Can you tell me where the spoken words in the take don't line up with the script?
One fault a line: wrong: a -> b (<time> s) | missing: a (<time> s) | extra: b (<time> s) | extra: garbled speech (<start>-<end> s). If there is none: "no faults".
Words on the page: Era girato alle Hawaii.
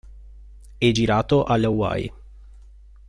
wrong: Era -> È (0.8 s)